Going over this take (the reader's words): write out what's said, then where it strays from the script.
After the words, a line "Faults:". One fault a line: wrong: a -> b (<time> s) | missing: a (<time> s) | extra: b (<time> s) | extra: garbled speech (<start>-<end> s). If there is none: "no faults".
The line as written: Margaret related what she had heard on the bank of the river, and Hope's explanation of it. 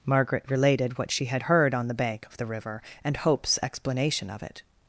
Margaret related what she had heard on the bank of the river, and Hope's explanation of it.
Faults:
no faults